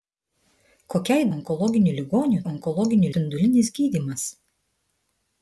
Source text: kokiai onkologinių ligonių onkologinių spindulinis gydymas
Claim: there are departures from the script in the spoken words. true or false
false